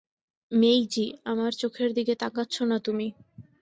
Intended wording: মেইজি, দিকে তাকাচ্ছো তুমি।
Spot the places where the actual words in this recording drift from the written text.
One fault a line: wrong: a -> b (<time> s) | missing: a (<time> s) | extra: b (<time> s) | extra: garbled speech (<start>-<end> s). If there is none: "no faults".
extra: আমার চোখের (1.2 s)
extra: না (2.7 s)